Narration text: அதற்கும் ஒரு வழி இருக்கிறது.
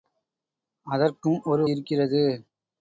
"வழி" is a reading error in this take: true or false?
true